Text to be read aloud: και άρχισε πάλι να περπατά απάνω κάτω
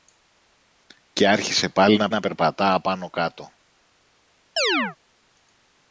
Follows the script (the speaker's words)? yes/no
no